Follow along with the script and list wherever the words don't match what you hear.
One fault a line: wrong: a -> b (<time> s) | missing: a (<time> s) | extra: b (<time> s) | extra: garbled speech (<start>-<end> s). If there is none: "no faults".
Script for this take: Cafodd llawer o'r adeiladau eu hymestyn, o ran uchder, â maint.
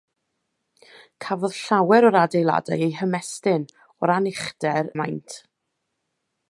no faults